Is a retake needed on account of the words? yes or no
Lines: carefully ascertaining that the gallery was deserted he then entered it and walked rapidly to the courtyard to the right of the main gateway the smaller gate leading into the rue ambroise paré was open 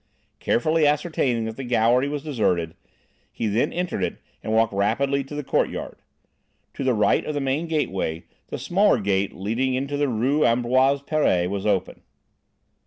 no